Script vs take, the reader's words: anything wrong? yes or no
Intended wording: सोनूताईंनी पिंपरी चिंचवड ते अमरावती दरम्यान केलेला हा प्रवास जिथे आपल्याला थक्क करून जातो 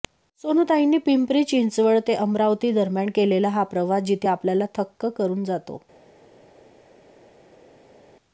no